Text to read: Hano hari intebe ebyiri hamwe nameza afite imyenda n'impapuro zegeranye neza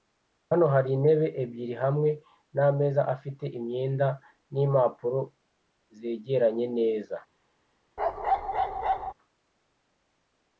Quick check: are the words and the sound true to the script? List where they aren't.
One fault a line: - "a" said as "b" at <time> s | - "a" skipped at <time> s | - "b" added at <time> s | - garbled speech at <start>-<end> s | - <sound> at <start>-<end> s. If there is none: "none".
- bark at 8.0-9.1 s